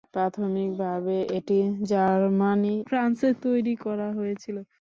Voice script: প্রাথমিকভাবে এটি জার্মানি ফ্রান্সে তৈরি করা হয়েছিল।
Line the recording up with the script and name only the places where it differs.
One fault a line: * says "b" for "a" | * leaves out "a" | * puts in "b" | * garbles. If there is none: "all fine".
all fine